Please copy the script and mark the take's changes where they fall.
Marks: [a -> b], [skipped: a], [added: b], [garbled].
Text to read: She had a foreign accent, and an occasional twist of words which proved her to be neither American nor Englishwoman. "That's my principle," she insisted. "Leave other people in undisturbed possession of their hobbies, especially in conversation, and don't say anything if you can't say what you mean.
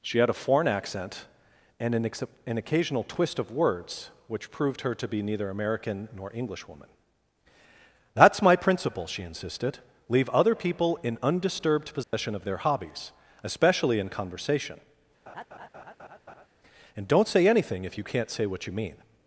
She had a foreign accent, and an [added: ex an] occasional twist of words which proved her to be neither American nor Englishwoman. "That's my principle," she insisted. "Leave other people in undisturbed possession of their hobbies, especially in conversation, and don't say anything if you can't say what you mean.